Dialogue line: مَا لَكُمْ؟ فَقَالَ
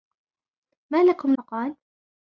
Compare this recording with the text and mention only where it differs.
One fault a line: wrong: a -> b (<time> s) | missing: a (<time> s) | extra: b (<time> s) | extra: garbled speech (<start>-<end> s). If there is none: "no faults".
no faults